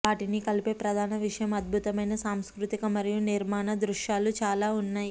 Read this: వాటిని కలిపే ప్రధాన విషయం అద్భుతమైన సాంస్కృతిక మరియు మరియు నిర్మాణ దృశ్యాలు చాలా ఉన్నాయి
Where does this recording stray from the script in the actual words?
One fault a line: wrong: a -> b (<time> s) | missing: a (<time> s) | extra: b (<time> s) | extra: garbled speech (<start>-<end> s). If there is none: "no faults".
missing: మరియు (3.2 s)